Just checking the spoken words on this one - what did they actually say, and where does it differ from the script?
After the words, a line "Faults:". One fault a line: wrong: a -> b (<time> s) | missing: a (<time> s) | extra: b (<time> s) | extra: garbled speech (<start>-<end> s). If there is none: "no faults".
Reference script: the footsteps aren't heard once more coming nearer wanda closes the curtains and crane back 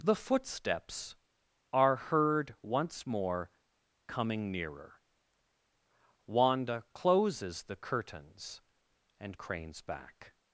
the footsteps are heard once more coming nearer wanda closes the curtains and cranes back
Faults:
wrong: aren't -> are (1.7 s)
wrong: crane -> cranes (9.4 s)